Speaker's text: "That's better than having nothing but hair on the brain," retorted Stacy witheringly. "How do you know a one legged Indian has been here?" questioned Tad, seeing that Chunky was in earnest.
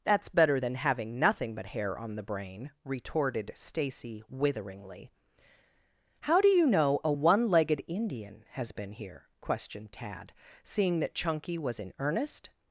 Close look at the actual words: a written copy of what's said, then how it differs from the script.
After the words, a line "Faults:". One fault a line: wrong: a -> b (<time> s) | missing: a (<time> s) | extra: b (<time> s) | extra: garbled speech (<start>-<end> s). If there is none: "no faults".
"That's better than having nothing but hair on the brain," retorted Stacy witheringly. "How do you know a one legged Indian has been here?" questioned Tad, seeing that Chunky was in earnest.
Faults:
no faults